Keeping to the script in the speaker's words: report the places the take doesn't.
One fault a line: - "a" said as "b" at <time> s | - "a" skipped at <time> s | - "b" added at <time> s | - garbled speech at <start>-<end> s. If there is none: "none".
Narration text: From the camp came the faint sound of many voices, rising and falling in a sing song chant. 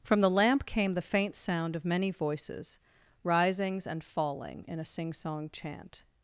- "camp" said as "lamp" at 0.3 s
- "rising" said as "risings" at 3.2 s